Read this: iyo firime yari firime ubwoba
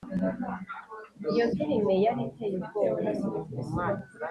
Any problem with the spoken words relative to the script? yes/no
yes